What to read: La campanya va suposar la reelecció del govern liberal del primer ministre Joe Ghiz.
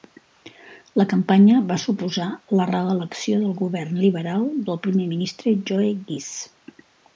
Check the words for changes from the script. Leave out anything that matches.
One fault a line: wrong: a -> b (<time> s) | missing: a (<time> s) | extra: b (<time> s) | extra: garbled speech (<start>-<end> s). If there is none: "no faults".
no faults